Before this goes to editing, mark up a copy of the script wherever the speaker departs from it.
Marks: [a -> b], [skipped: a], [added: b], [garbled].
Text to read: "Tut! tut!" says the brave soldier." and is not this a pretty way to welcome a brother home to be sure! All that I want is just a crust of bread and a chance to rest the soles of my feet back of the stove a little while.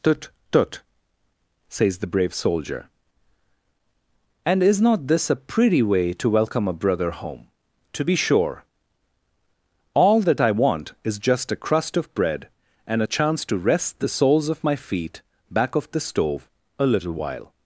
"Tut! tut!" says the brave soldier." and is not this a pretty way to welcome a brother home to be sure! All that I want is just a crust of bread and a chance to rest the soles of my feet back of the stove a little while.